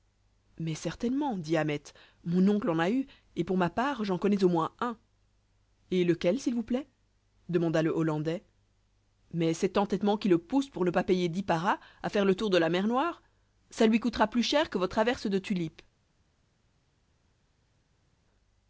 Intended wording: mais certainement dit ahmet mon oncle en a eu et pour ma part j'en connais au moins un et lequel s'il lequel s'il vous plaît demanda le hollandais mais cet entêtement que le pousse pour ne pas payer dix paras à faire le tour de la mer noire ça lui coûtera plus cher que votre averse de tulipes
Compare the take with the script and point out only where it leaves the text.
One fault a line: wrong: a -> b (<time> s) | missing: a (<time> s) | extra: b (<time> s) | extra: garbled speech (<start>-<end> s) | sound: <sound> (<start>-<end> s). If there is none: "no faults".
missing: lequel s'il (6.5 s)
wrong: que -> qui (10.2 s)